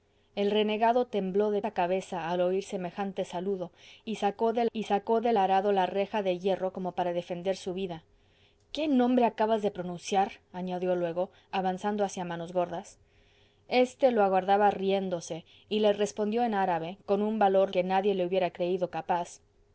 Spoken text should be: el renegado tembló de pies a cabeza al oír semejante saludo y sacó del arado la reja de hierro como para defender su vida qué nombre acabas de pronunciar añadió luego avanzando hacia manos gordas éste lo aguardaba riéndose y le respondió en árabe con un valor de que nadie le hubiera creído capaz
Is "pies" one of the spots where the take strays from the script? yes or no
yes